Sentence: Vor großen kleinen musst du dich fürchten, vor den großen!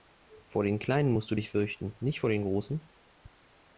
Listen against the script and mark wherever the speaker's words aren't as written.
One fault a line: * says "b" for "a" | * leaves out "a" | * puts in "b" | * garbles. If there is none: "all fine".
* says "den" for "großen"
* puts in "nicht"